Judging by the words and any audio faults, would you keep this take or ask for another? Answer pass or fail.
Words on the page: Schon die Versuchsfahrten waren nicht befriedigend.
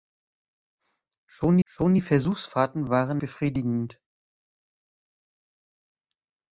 fail